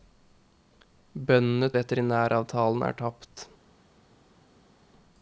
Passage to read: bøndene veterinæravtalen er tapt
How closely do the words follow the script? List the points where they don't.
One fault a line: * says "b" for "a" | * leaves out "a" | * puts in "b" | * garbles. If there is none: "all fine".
all fine